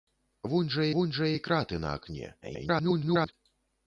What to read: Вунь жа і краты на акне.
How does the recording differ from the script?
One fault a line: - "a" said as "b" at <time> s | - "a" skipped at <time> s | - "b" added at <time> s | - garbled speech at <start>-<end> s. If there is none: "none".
- "вунь жа" added at 1.0 s
- garbled speech at 2.4-3.3 s